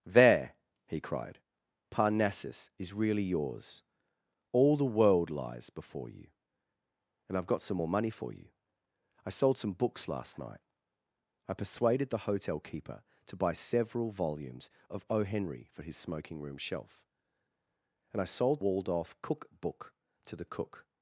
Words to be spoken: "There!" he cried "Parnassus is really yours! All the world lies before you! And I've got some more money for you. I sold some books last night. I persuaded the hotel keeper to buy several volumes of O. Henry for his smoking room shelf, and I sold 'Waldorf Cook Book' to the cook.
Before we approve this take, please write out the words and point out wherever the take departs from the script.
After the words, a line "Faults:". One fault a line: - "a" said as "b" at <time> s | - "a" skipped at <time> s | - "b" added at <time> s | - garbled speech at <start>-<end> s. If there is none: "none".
"There!" he cried "Parnassus is really yours! All the world lies before you! And I've got some more money for you. I sold some books last night. I persuaded the hotel keeper to buy several volumes of O. Henry for his smoking room shelf, and I sold 'Waldorf Cook Book' to the cook.
Faults:
none